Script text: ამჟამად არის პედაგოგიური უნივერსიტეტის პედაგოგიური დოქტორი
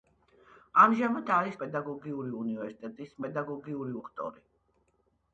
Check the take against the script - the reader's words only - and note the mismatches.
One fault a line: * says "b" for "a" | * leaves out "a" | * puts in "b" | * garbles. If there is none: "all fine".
all fine